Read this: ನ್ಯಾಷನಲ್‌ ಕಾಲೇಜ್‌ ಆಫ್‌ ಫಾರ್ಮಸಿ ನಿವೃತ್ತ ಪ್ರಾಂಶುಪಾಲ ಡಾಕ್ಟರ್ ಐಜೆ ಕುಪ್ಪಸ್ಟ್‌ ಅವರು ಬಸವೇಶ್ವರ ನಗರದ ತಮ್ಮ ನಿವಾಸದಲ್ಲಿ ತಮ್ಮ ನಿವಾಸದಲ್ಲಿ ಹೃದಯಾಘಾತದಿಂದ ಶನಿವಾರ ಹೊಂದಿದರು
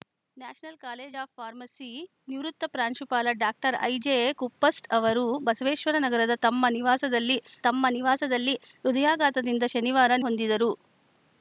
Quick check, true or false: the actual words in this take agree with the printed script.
true